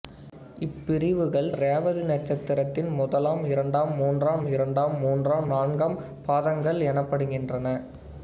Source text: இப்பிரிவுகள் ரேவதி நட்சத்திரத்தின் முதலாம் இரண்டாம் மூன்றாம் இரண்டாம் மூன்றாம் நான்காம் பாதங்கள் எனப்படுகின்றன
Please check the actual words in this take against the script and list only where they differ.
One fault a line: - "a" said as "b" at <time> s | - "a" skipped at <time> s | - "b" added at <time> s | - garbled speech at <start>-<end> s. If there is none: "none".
none